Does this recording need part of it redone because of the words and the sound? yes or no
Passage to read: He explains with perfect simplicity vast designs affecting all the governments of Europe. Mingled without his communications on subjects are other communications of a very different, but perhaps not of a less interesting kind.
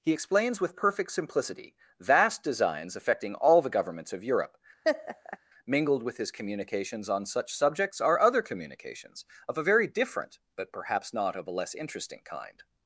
yes